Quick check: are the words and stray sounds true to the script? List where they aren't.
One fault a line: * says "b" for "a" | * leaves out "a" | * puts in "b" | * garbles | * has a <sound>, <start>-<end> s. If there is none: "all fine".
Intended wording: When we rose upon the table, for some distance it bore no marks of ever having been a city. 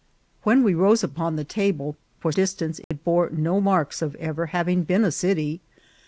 * leaves out "some"
* has a dropout, 2.8-2.9 s